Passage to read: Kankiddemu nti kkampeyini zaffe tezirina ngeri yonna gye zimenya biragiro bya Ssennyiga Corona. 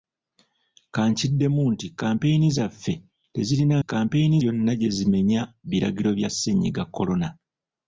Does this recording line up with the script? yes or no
no